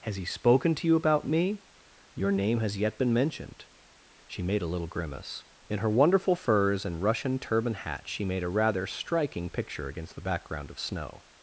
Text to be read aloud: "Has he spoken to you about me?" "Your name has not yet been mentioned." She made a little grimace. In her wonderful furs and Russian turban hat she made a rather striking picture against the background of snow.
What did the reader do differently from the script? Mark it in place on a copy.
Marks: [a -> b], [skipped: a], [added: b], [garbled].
"Has he spoken to you about me?" "Your name has [skipped: not] yet been mentioned." She made a little grimace. In her wonderful furs and Russian turban hat she made a rather striking picture against the background of snow.